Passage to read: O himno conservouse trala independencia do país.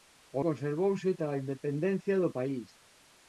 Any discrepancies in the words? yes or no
yes